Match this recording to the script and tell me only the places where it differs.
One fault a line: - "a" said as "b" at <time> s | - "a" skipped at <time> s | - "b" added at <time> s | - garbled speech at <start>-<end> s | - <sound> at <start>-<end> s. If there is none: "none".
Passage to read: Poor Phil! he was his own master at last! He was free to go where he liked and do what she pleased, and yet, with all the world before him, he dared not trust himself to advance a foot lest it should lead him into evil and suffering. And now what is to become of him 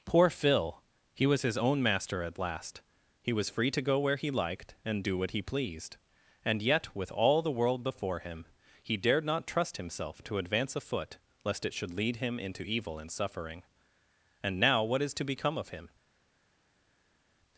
- "she" said as "he" at 5.3 s